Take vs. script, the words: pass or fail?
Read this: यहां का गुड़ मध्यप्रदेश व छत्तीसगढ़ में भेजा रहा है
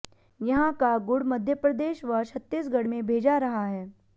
pass